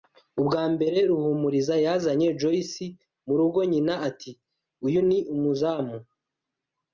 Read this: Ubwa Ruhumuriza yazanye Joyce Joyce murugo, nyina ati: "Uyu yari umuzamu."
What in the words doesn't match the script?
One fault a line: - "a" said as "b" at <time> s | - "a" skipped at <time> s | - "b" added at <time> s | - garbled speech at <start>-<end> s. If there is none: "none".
- "mbere" added at 0.7 s
- "Joyce" skipped at 2.9 s
- "yari" said as "ni" at 5.1 s